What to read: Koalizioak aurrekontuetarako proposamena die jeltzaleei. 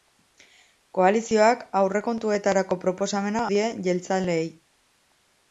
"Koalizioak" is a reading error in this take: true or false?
false